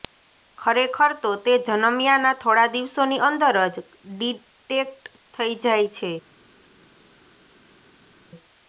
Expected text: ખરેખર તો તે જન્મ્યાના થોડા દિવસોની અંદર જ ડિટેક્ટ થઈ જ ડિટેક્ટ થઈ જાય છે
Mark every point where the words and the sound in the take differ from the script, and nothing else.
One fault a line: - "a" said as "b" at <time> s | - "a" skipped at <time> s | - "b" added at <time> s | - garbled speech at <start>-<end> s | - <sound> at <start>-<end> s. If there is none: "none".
- "જ ડિટેક્ટ થઈ" skipped at 5.5 s